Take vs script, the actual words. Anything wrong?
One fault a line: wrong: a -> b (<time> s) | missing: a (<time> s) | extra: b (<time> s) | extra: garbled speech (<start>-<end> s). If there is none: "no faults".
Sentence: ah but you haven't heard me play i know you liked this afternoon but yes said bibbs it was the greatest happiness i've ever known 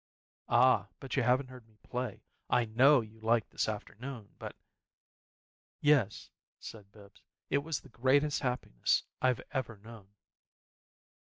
no faults